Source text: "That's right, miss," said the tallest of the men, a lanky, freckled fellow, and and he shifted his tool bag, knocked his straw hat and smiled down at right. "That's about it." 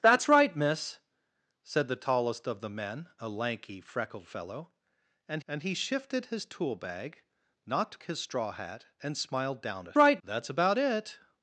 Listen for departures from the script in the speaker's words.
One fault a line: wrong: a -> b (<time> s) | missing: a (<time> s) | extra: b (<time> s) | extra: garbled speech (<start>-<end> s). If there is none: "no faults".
no faults